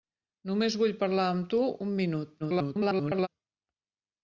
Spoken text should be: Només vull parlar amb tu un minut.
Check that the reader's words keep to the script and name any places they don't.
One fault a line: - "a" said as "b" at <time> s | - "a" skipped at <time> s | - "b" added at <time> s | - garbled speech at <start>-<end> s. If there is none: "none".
- garbled speech at 2.4-3.3 s